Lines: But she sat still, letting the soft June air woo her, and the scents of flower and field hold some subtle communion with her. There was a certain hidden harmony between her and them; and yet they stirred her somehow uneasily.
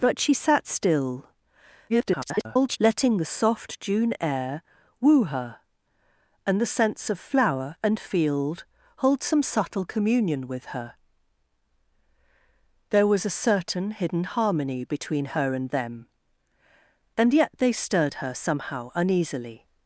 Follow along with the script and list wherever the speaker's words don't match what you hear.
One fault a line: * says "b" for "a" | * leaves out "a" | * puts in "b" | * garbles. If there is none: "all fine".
* garbles